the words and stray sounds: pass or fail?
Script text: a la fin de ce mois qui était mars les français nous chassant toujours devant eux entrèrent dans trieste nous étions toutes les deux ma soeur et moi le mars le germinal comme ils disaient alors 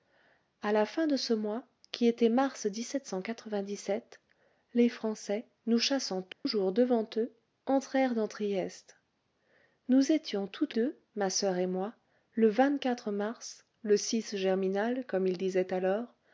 fail